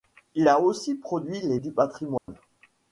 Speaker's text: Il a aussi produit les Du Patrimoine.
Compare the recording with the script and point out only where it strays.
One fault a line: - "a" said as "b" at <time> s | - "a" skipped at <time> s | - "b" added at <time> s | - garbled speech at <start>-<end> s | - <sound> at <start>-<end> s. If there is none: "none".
- dropout at 2.2-2.3 s